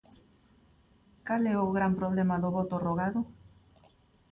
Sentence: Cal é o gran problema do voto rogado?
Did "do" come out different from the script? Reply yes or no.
no